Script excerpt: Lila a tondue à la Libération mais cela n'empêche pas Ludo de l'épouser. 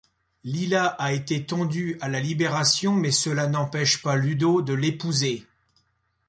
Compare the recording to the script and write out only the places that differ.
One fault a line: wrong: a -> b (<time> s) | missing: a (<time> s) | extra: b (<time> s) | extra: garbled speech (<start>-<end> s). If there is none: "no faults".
extra: été (1.1 s)